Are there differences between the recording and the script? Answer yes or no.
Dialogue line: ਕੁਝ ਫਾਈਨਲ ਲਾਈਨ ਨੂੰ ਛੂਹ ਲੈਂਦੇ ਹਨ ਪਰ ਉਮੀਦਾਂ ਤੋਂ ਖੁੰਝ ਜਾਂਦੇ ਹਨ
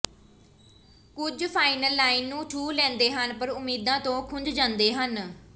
no